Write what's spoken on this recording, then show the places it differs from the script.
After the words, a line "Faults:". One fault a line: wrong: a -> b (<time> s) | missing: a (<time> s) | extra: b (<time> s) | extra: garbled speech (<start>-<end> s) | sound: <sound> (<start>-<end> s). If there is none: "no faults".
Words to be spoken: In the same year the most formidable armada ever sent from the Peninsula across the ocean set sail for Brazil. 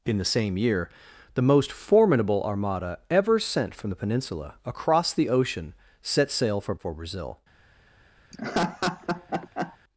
In the same year the most formidable armada ever sent from the Peninsula across the ocean set sail for for Brazil.
Faults:
extra: for (6.7 s)
sound: laugh (8.3-9.8 s)